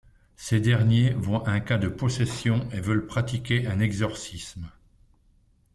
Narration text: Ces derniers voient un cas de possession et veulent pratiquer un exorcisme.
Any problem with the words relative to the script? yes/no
no